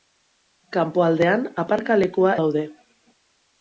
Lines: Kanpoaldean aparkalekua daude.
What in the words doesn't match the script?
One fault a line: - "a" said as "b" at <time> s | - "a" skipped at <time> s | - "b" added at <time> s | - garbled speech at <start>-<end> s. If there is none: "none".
none